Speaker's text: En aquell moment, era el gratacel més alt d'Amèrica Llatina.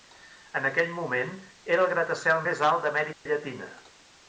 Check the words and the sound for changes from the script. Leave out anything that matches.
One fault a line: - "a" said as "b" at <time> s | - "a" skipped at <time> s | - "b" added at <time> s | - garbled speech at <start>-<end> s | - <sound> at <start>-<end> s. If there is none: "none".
- dropout at 3.1-3.3 s